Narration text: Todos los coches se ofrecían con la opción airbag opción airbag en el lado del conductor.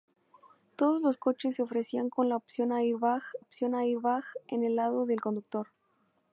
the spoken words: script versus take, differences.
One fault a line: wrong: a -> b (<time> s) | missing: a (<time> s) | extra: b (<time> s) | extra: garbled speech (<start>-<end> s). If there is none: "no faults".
no faults